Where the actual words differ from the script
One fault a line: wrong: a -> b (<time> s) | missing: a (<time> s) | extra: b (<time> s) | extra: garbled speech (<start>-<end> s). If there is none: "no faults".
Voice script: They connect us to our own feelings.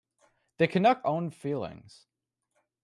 missing: us to our (1.1 s)